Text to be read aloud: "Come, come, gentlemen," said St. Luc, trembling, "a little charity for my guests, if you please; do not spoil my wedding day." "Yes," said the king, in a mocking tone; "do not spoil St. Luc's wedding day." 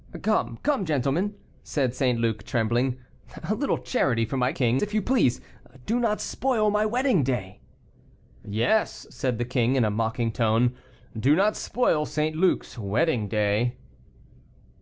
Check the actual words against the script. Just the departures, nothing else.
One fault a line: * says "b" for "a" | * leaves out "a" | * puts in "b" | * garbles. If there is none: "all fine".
* says "king" for "guests"